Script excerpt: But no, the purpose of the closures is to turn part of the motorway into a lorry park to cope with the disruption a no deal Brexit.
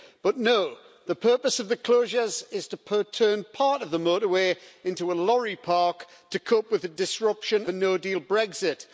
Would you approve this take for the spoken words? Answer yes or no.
yes